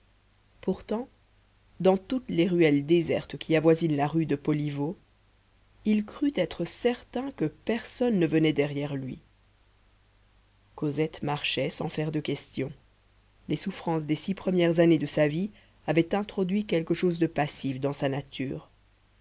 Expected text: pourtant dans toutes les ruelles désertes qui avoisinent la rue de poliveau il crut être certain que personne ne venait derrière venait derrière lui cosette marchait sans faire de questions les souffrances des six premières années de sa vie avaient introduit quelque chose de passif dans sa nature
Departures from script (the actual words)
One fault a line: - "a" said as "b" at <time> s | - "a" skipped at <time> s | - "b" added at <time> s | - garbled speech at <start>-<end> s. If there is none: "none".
- "venait derrière" skipped at 8.9 s